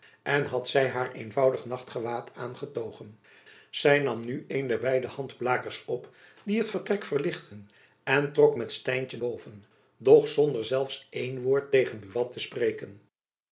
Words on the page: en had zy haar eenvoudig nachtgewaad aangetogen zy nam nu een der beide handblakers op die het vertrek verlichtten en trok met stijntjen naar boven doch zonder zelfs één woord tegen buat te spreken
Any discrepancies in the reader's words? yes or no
yes